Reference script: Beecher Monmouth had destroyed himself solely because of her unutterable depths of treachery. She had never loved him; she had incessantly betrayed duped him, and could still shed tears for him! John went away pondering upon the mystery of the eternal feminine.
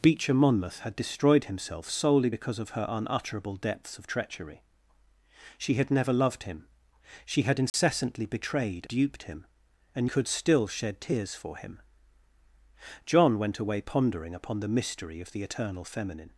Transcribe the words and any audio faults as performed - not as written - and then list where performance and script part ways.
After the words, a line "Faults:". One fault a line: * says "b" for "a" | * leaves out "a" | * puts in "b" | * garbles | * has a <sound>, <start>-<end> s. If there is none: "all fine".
Beecher Monmouth had destroyed himself solely because of her unutterable depths of treachery. She had never loved him; she had incessantly betrayed duped him, and could still shed tears for him! John went away pondering upon the mystery of the eternal feminine.
Faults:
* has a dropout, 7.7-7.7 s